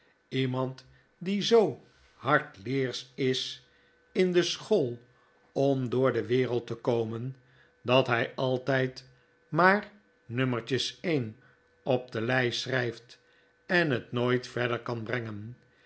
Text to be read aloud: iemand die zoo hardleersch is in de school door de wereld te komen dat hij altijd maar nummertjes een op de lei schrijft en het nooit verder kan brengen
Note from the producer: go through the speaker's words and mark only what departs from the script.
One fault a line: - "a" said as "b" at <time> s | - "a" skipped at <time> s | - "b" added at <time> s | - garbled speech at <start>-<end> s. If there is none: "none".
- "om" added at 5.5 s